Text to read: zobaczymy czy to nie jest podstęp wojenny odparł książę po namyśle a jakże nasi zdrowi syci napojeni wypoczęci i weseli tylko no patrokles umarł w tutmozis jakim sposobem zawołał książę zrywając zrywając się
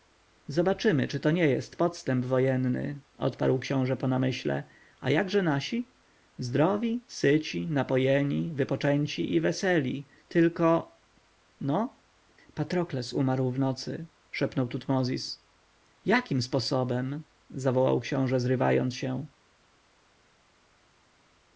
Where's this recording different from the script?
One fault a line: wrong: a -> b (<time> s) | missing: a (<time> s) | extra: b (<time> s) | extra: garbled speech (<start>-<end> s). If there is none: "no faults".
extra: nocy szepnął (13.6 s)
missing: zrywając (18.9 s)